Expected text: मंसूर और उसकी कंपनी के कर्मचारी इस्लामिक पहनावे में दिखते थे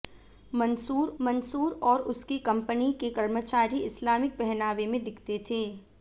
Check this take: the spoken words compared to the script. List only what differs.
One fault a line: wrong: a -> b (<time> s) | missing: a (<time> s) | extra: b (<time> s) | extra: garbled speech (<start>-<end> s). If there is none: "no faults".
extra: मंसूर (1.2 s)